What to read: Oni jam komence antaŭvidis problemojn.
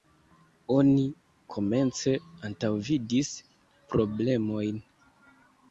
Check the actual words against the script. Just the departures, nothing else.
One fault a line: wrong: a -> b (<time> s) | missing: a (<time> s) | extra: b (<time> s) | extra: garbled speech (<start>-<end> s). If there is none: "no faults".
missing: jam (1.0 s)